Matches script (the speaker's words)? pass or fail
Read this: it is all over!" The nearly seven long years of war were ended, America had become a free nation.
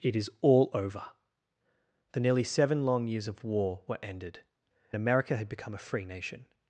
pass